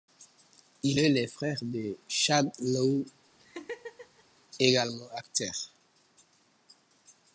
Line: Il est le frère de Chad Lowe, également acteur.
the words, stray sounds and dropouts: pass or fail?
fail